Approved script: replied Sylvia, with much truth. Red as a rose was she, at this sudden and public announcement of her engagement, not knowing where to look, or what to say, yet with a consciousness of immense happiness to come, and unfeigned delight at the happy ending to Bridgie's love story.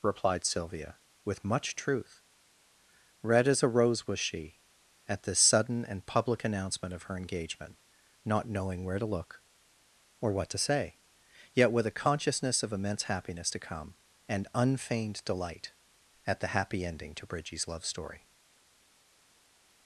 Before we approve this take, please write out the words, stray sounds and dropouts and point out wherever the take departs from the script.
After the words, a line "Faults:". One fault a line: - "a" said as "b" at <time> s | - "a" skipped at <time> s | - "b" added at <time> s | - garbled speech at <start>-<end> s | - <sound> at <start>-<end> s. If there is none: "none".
replied Sylvia, with much truth. Red as a rose was she, at this sudden and public announcement of her engagement, not knowing where to look, or what to say, yet with a consciousness of immense happiness to come, and unfeigned delight at the happy ending to Bridgie's love story.
Faults:
none